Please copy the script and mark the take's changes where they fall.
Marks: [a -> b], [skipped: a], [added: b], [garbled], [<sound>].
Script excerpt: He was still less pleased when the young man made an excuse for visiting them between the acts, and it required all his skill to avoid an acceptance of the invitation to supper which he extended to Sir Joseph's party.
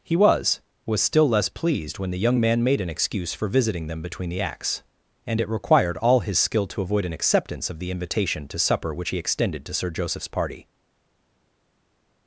He was [added: was] still less pleased when the young man made an excuse for visiting them between the acts, and it required all his skill to avoid an acceptance of the invitation to supper which he extended to Sir Joseph's party.